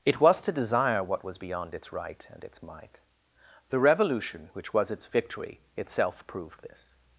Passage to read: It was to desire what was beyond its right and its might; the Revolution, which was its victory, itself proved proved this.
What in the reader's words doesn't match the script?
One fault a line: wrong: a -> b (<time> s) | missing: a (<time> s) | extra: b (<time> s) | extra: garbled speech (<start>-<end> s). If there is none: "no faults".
missing: proved (6.6 s)